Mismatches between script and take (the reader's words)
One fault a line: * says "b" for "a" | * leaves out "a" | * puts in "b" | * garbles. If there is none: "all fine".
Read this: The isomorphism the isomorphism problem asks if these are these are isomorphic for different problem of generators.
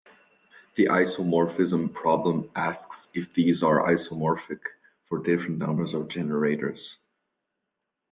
* leaves out "the isomorphism"
* leaves out "these are"
* says "numbers" for "problem"